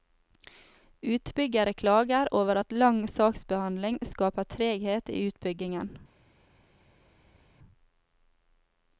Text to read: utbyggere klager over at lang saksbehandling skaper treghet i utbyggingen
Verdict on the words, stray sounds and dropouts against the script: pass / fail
pass